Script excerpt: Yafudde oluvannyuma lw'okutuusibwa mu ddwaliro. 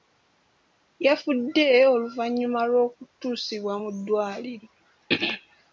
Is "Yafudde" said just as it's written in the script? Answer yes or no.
yes